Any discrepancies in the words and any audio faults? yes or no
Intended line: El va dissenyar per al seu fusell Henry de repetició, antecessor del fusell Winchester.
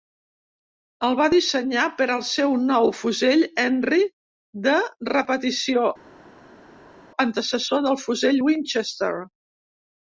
yes